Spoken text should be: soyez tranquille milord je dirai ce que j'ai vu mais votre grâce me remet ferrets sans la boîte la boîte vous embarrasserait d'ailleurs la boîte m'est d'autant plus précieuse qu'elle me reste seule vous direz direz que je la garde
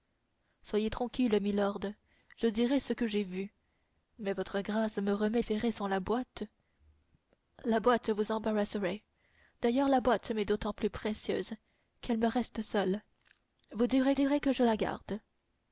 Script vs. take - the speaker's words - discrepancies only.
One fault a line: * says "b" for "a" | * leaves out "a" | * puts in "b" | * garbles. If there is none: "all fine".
all fine